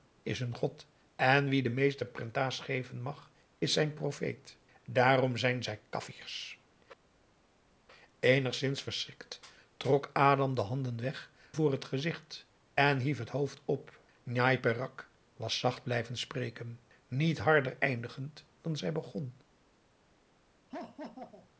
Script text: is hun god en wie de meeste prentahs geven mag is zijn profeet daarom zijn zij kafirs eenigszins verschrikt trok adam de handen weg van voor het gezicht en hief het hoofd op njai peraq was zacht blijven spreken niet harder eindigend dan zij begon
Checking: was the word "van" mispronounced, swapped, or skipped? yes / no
yes